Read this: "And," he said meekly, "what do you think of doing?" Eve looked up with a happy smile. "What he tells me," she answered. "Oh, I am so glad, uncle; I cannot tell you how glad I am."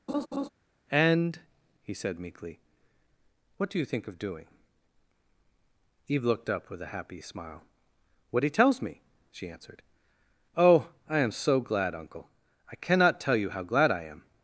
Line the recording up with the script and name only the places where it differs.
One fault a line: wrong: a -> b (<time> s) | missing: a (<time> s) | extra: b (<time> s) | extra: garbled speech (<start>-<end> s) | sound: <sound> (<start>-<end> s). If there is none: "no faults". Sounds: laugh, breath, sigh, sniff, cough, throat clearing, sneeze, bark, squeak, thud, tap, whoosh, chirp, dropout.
sound: laugh (0.1-0.5 s)